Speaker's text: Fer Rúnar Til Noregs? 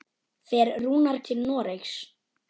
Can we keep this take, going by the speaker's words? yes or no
yes